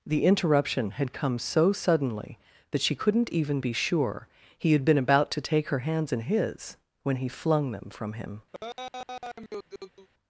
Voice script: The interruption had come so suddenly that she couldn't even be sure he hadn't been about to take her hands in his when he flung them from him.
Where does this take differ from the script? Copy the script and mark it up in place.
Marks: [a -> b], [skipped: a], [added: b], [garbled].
The interruption had come so suddenly that she couldn't even be sure he [hadn't -> had] been about to take her hands in his when he flung them from him.